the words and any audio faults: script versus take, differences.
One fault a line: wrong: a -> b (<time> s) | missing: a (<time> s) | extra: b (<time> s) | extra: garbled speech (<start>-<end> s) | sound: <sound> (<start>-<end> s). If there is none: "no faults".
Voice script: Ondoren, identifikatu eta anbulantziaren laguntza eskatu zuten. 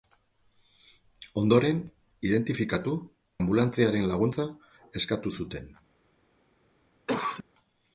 missing: eta (3.0 s)
sound: cough (7.1-7.4 s)